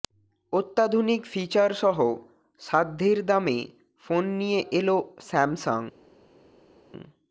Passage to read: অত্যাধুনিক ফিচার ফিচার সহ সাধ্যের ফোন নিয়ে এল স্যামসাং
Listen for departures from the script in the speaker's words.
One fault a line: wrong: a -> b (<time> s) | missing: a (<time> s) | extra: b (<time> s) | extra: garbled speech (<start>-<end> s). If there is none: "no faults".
missing: ফিচার (1.7 s)
extra: দামে (3.3 s)